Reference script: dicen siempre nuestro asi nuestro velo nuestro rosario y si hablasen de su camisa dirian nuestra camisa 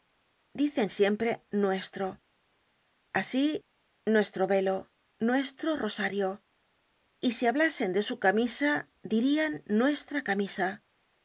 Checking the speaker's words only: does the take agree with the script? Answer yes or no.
yes